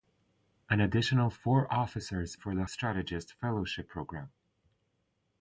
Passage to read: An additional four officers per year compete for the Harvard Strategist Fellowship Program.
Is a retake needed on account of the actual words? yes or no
yes